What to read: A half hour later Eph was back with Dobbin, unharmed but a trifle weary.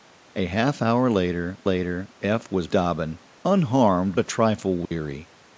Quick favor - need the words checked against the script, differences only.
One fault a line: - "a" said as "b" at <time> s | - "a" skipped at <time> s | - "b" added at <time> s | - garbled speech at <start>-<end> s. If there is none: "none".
- "later" added at 1.6 s
- "back with" skipped at 2.7 s
- "but" skipped at 4.2 s